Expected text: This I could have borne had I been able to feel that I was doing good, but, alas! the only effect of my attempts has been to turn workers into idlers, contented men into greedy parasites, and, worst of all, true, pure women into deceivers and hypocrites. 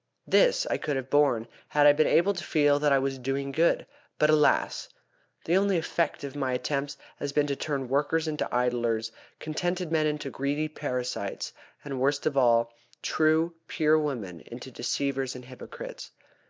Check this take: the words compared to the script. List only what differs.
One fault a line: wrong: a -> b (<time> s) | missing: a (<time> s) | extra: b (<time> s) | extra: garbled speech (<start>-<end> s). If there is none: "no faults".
no faults